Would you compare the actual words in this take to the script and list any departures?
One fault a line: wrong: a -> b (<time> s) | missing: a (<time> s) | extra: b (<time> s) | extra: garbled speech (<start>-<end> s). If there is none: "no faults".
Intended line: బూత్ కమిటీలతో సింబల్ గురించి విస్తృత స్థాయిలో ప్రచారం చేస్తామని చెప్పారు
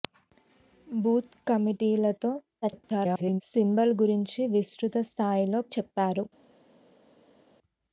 extra: garbled speech (2.6-3.4 s)
missing: ప్రచారం చేస్తామని (5.6 s)